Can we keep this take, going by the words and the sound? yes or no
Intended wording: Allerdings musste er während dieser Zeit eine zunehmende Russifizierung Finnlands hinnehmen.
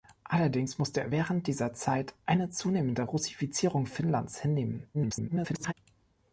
no